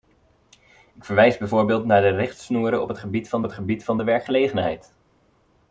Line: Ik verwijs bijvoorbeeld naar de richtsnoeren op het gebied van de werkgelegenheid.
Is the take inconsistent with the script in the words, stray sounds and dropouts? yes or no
yes